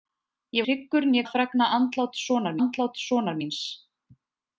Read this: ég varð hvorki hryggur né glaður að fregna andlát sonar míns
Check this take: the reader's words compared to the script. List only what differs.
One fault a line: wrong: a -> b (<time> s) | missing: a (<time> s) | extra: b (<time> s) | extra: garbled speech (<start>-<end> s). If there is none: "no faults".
missing: varð hvorki (0.6 s)
missing: glaður (1.2 s)
extra: andlát sonar (2.6 s)